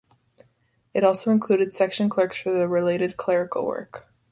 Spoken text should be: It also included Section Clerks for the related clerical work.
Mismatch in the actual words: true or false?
false